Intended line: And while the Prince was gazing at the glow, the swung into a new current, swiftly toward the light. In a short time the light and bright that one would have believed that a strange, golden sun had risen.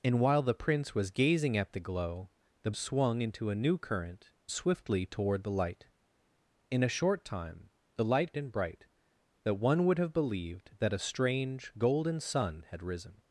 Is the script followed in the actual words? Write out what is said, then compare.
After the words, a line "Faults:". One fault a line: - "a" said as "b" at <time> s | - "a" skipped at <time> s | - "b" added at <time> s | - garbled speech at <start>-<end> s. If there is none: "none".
And while the Prince was gazing at the glow, the swung into a new current, swiftly toward the light. In a short time the light and bright that one would have believed that a strange, golden sun had risen.
Faults:
none